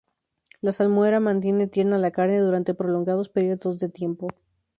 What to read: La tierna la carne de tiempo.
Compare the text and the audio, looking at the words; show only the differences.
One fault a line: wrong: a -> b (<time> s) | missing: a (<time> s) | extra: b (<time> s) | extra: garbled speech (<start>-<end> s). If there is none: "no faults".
extra: salmuera mantiene (0.7 s)
extra: durante prolongados periodos (2.4 s)